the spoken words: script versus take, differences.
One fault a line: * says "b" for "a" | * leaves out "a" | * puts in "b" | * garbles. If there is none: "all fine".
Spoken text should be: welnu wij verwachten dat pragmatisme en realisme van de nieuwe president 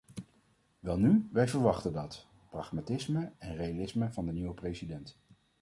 all fine